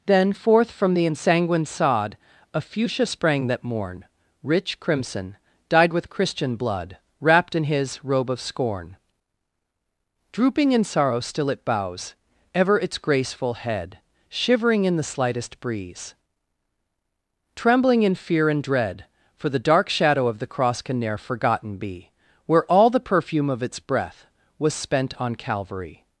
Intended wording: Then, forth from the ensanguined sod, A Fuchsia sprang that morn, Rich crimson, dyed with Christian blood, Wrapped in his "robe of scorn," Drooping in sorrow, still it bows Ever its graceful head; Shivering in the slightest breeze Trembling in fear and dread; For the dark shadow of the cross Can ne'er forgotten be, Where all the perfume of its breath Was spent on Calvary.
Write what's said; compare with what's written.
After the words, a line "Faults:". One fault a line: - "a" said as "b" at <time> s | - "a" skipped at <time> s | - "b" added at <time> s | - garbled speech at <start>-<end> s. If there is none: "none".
Then, forth from the ensanguined sod, A Fuchsia sprang that morn, Rich crimson, dyed with Christian blood, Wrapped in his "robe of scorn," Drooping in sorrow, still it bows Ever its graceful head; Shivering in the slightest breeze Trembling in fear and dread; For the dark shadow of the cross Can ne'er forgotten be, Where all the perfume of its breath Was spent on Calvary.
Faults:
none